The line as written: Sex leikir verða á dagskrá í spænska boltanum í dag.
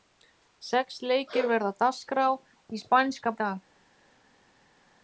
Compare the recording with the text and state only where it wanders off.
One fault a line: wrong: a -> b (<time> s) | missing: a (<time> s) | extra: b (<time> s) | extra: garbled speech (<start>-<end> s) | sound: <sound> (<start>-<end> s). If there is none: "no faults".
missing: boltanum (3.4 s)